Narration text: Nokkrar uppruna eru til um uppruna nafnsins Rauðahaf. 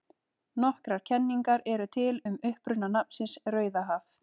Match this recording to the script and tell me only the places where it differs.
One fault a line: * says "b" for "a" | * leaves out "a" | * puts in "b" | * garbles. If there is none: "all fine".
* says "kenningar" for "uppruna"